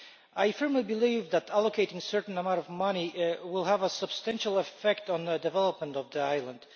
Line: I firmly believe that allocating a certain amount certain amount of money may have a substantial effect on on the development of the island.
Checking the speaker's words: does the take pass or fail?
fail